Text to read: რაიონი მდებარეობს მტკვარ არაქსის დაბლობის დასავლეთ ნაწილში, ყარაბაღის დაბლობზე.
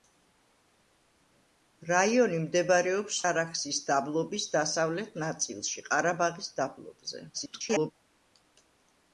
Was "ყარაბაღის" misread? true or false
false